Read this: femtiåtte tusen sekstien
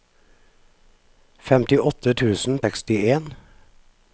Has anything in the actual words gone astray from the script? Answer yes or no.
no